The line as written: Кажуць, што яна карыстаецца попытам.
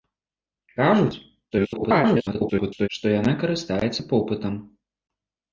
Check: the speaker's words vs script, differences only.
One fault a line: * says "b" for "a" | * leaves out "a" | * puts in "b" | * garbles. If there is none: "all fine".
* garbles